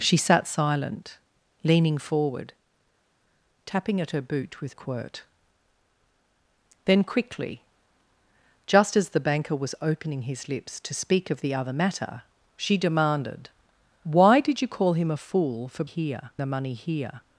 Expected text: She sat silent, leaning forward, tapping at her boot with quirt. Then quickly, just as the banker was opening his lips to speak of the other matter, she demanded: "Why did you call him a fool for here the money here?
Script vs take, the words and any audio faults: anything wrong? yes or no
no